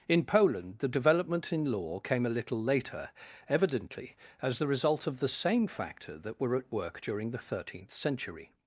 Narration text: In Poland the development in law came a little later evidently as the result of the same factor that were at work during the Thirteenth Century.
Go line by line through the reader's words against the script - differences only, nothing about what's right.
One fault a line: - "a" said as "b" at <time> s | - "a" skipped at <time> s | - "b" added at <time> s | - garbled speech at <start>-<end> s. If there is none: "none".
none